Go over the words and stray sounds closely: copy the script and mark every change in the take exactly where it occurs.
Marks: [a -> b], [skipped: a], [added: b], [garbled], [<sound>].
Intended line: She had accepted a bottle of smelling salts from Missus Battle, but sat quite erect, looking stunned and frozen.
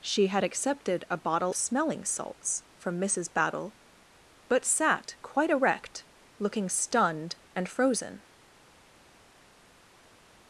She had accepted a bottle [skipped: of] smelling salts from Missus Battle, but sat quite erect, looking stunned and frozen.